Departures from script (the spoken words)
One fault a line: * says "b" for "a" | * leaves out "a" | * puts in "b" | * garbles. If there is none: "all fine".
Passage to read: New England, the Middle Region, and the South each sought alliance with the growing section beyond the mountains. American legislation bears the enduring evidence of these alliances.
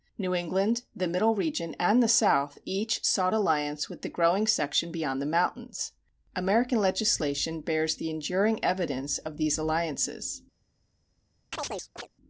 all fine